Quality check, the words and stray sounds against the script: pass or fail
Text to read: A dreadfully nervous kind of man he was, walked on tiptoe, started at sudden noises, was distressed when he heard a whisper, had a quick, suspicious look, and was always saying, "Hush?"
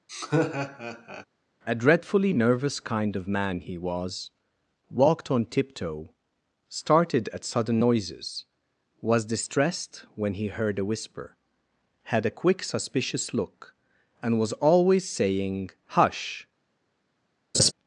fail